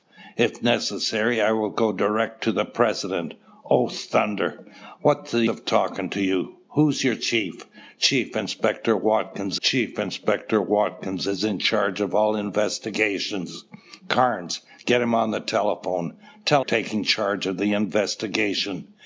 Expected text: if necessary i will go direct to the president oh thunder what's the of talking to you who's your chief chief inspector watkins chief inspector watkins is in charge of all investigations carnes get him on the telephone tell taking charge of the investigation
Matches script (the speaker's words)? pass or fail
pass